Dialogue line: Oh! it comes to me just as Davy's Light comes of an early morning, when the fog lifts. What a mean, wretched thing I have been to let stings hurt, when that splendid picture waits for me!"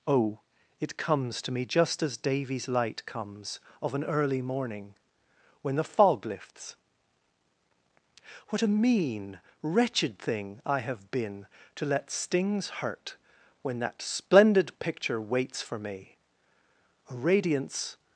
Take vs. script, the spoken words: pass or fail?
fail